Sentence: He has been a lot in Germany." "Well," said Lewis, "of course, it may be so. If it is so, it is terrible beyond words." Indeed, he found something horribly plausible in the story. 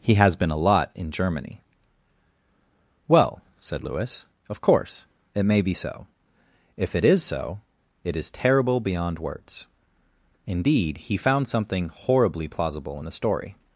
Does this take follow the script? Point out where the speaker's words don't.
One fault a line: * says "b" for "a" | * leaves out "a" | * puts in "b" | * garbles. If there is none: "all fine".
all fine